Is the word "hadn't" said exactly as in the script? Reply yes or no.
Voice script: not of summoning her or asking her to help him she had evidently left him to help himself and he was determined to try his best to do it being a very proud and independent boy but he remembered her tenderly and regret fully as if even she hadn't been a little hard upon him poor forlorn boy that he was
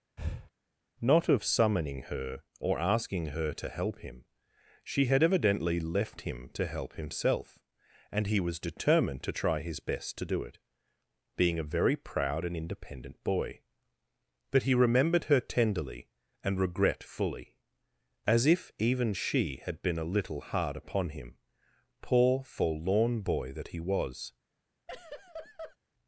no